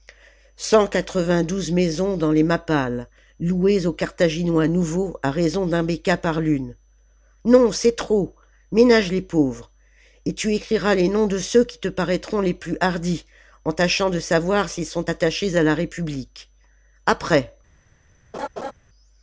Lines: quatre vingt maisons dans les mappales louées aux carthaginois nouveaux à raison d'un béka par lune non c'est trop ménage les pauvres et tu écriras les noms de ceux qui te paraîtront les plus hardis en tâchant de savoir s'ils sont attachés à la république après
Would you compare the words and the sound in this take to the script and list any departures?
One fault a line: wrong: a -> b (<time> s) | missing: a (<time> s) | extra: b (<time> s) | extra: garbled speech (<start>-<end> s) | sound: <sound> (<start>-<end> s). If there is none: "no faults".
extra: douze (1.4 s)
sound: laugh (18.3-18.7 s)